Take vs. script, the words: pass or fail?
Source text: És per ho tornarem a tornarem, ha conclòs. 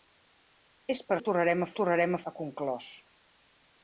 pass